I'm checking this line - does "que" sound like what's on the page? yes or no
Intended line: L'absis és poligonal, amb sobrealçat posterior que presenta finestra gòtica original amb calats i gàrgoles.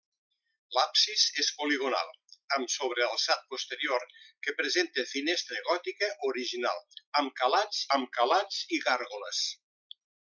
yes